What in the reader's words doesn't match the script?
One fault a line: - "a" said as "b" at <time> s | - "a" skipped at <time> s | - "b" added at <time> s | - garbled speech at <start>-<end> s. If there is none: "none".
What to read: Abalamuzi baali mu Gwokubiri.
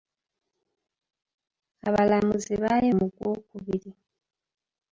none